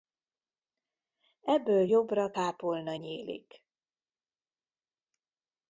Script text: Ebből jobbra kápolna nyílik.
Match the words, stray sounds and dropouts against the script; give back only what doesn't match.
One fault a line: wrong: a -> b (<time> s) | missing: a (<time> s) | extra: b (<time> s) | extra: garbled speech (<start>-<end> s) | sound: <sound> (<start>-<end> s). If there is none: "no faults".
no faults